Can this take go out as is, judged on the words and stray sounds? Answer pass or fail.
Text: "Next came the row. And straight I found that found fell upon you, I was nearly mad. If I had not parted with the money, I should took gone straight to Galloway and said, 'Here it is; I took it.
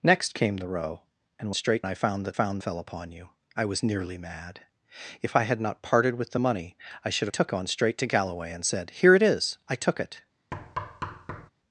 fail